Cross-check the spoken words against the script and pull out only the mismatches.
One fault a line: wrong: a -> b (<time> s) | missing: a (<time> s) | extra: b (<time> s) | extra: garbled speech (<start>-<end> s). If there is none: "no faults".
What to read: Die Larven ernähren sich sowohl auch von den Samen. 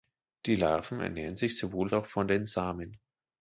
no faults